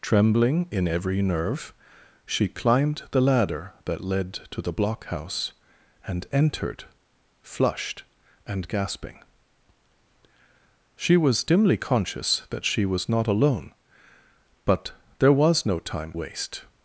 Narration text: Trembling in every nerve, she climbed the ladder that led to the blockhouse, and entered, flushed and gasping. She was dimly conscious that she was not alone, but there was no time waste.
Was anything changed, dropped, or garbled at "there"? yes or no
no